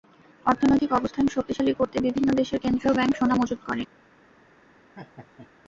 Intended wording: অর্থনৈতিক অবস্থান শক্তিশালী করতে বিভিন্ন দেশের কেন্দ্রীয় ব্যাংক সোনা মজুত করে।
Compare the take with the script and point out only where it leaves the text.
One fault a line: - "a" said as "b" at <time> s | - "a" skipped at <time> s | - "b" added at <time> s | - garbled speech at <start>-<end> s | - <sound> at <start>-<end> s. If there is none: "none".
- laugh at 4.9-5.5 s